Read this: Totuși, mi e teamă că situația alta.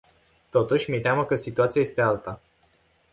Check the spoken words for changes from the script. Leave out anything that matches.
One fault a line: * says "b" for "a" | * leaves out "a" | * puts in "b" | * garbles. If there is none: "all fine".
* puts in "este"